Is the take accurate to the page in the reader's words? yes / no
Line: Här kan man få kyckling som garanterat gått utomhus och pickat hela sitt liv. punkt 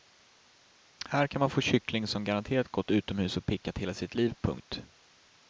yes